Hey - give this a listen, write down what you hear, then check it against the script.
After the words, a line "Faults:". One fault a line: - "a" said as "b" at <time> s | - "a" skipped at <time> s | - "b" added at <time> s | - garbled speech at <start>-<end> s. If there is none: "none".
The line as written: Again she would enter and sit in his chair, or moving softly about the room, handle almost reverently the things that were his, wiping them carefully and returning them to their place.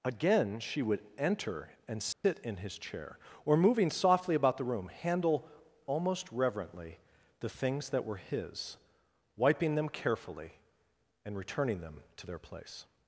Again she would enter and sit in his chair, or moving softly about the room, handle almost reverently the things that were his, wiping them carefully and returning them to their place.
Faults:
none